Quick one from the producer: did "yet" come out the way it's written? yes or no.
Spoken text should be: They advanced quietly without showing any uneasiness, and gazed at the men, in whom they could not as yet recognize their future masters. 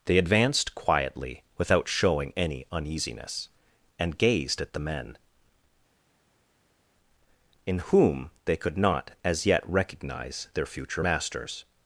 yes